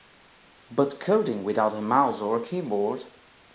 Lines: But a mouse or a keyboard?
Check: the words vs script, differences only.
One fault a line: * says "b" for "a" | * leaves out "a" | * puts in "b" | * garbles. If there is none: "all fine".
* puts in "coding without"